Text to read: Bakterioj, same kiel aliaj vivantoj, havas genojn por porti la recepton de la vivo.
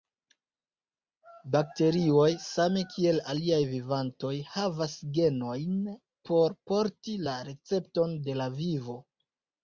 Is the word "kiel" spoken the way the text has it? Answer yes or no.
yes